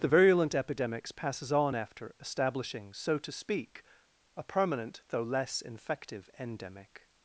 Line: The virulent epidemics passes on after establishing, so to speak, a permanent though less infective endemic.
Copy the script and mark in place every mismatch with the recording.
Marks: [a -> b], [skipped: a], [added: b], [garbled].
The virulent epidemics passes on after establishing, so to speak, a permanent though less infective endemic.